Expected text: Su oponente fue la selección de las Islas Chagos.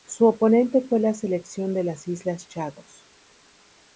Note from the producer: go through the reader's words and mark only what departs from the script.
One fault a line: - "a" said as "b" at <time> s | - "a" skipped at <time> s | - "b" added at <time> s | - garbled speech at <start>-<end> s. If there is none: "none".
none